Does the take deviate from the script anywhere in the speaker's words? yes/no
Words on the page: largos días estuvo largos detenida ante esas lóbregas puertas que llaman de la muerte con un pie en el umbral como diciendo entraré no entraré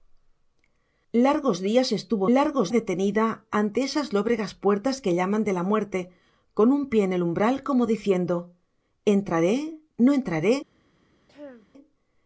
no